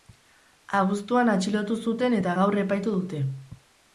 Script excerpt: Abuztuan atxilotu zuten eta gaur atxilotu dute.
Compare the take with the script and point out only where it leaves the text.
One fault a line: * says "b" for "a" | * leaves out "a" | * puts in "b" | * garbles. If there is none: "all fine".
* says "epaitu" for "atxilotu"